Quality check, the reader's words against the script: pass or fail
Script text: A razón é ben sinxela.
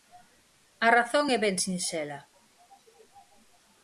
pass